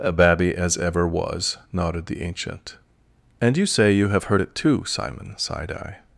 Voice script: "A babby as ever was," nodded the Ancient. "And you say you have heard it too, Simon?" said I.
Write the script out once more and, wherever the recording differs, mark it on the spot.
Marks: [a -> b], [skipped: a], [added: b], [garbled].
"A babby as ever was," nodded the Ancient. "And you say you have heard it too, Simon?" [said -> sighed] I.